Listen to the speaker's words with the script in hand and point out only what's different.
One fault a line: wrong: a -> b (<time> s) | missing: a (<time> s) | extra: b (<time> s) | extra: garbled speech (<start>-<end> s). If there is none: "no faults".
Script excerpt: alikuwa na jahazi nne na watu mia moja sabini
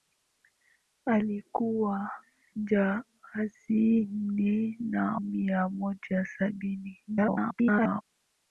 missing: na (2.1 s)
missing: watu (5.2 s)
extra: garbled speech (7.1-8.0 s)